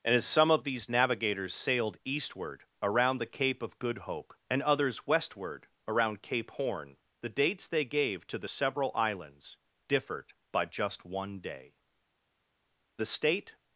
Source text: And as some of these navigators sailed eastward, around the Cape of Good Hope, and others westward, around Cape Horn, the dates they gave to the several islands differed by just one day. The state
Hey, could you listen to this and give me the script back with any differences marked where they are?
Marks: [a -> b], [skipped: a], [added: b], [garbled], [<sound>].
And as some of these navigators sailed eastward, around the Cape of Good Hope, and others westward, around Cape Horn, the dates they gave to the several islands differed by just one day. The state